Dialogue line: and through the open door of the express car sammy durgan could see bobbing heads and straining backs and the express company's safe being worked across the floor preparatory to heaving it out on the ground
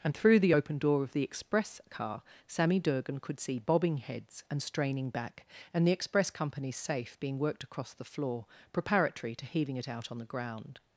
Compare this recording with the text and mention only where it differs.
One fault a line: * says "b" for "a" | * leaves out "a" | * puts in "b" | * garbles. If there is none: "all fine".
* says "back" for "backs"